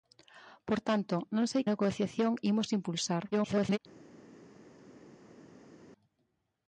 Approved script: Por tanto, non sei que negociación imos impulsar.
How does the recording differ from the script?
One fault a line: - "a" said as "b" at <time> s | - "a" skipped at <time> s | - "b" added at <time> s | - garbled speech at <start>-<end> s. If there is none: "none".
- "que" skipped at 1.6 s
- garbled speech at 3.3-3.8 s